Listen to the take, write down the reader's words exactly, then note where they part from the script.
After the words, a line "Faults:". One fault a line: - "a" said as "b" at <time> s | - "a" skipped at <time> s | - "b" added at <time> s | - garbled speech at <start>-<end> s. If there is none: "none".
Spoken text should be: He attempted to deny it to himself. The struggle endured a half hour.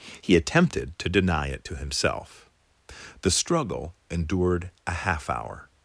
He attempted to deny it to himself. The struggle endured a half hour.
Faults:
none